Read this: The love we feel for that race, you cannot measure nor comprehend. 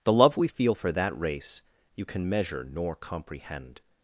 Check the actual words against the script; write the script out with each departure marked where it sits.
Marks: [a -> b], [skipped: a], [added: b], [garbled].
The love we feel for that race, you [cannot -> can] measure nor comprehend.